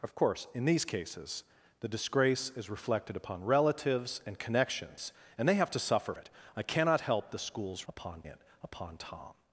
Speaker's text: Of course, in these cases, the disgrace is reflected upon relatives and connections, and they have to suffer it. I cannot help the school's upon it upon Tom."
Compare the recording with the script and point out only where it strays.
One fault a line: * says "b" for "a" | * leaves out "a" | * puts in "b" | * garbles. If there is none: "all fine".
all fine